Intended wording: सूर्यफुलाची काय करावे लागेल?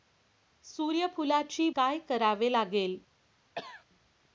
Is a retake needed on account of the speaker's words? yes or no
no